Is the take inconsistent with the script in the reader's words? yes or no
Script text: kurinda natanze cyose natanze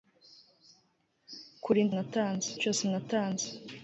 no